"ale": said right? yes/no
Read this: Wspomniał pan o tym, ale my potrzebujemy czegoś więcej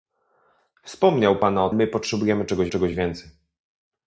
no